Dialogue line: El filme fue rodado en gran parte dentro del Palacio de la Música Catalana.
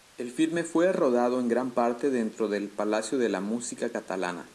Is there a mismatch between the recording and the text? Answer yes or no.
no